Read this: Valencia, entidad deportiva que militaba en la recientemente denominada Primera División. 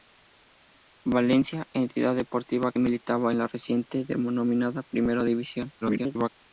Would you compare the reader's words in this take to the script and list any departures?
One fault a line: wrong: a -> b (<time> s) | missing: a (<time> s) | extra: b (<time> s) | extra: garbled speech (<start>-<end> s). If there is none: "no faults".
missing: que (2.7 s)
extra: garbled speech (5.8-6.3 s)